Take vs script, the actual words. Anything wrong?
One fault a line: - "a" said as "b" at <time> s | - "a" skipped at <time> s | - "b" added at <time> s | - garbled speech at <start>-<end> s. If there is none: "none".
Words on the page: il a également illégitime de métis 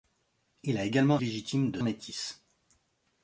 none